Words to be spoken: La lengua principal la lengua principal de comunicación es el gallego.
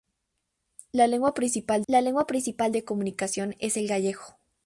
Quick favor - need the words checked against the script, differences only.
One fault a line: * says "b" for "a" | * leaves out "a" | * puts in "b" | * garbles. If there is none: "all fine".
all fine